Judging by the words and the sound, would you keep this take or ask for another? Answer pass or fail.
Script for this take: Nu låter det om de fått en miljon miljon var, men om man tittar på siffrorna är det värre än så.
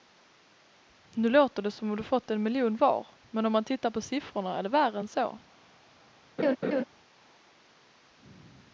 fail